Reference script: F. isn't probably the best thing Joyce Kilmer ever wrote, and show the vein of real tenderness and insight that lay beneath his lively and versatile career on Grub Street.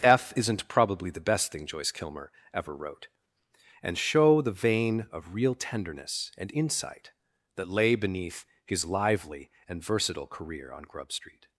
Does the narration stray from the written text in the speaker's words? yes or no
no